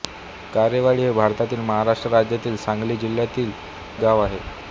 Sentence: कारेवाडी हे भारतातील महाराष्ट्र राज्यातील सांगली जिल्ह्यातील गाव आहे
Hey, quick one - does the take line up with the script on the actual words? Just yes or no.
yes